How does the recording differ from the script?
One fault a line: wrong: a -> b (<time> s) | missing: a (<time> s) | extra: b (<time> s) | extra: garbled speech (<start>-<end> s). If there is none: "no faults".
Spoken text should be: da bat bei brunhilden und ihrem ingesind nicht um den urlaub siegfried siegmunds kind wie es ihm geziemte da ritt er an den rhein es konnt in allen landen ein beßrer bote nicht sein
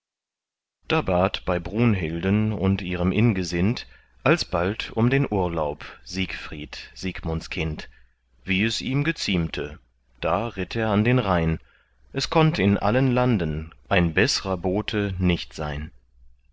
wrong: nicht -> alsbald (4.2 s)